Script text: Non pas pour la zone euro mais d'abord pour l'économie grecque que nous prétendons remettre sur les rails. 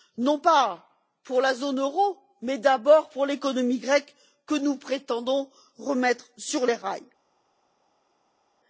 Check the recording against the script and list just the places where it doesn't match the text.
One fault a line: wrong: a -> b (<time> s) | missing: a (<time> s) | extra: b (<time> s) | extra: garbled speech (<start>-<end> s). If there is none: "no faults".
no faults